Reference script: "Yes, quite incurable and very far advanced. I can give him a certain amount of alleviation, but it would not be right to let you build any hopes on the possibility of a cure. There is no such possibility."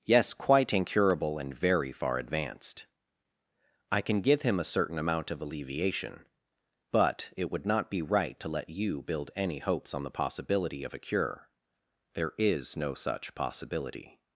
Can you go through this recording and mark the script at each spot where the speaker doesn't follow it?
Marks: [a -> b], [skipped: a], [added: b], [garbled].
"Yes, quite incurable and very far advanced. I can give him a certain amount of alleviation, but it would not be right to let you build any hopes on the possibility of a cure. There is no such possibility."